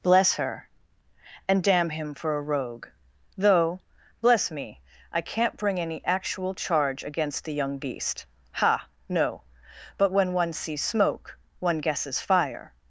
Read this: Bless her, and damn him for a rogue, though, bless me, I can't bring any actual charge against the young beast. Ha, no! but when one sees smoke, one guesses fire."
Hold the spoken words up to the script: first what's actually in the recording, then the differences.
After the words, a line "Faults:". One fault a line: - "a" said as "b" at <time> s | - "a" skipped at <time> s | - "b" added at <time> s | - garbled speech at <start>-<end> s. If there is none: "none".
Bless her, and damn him for a rogue, though, bless me, I can't bring any actual charge against the young beast. Ha, no! but when one sees smoke, one guesses fire."
Faults:
none